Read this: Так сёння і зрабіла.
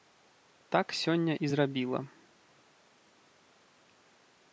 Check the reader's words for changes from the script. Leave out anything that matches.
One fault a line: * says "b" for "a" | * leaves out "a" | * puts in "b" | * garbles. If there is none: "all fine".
all fine